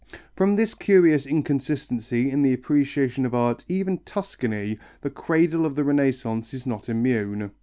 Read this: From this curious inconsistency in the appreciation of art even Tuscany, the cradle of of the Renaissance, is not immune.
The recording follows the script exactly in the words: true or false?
false